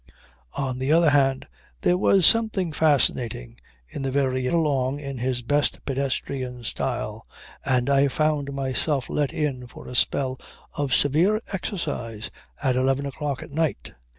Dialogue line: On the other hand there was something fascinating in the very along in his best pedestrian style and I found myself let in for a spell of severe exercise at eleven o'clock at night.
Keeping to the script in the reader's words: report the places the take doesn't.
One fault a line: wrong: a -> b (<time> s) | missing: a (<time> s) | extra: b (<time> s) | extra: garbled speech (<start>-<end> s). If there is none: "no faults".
no faults